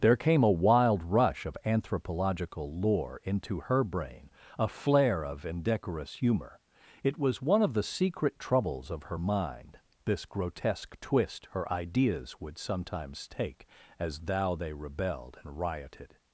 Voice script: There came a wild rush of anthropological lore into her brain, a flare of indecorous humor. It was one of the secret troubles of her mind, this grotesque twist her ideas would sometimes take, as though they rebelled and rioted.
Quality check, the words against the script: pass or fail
fail